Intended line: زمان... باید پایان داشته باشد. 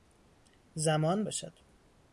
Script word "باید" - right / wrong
wrong